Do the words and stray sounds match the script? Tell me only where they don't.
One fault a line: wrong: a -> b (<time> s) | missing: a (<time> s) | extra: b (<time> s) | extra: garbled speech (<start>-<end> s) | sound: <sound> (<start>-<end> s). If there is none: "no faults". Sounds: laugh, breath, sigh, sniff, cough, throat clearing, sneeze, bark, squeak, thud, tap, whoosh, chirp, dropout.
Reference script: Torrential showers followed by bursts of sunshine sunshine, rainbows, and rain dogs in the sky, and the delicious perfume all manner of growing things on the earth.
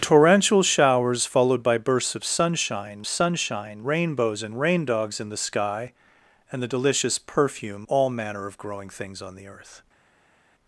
no faults